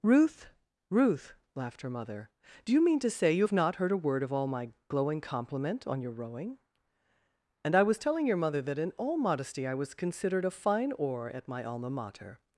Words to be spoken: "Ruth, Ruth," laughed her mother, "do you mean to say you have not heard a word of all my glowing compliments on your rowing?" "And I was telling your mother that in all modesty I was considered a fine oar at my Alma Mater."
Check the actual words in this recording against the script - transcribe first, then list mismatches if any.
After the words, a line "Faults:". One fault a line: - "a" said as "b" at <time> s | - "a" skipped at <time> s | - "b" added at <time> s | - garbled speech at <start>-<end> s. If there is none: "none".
"Ruth, Ruth," laughed her mother, "do you mean to say you have not heard a word of all my glowing compliment on your rowing?" "And I was telling your mother that in all modesty I was considered a fine oar at my Alma Mater."
Faults:
- "compliments" said as "compliment" at 5.2 s